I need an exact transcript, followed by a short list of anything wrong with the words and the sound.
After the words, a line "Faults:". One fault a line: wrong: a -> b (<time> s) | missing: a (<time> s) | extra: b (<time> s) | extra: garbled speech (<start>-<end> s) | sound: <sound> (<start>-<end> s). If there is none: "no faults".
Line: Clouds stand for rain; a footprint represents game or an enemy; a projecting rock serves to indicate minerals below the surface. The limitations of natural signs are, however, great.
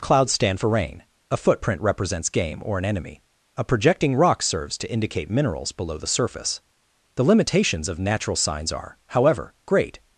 Clouds stand for rain; a footprint represents game or an enemy; a projecting rock serves to indicate minerals below the surface. The limitations of natural signs are, however, great.
Faults:
no faults